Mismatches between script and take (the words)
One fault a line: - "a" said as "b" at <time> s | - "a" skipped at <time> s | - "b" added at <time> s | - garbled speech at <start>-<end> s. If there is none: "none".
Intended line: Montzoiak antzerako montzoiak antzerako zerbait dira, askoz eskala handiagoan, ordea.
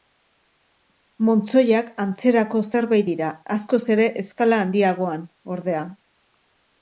- "montzoiak antzerako" skipped at 2.6 s
- "ere" added at 4.0 s